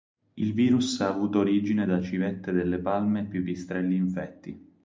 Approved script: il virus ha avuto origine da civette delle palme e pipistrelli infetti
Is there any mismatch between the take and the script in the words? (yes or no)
no